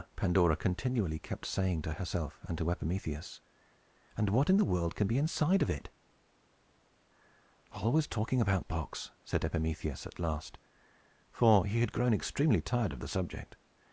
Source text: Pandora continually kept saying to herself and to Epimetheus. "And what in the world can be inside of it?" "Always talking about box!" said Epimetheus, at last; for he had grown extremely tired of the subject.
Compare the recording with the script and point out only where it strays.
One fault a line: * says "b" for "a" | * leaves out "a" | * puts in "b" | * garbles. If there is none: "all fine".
all fine